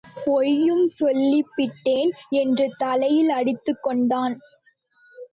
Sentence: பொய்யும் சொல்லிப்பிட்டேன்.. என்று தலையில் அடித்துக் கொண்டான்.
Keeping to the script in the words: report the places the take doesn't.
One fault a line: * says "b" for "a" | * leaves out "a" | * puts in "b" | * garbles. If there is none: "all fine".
all fine